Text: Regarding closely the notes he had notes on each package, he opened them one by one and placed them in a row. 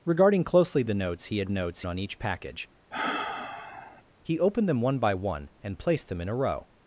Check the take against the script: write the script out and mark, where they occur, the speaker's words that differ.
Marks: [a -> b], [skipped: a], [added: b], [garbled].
Regarding closely the notes he had notes on each package, he opened them one by one and placed them in a row.